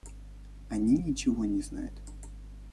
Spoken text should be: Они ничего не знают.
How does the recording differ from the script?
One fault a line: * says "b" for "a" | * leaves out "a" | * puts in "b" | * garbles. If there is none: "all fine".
all fine